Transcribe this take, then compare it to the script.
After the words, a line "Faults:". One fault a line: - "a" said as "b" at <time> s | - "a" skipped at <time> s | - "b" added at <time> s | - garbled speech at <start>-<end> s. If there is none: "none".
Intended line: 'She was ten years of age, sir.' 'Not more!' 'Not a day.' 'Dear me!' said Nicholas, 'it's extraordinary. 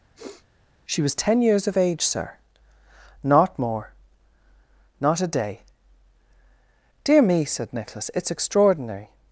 'She was ten years of age, sir.' 'Not more!' 'Not a day.' 'Dear me!' said Nicholas, 'it's extraordinary.
Faults:
none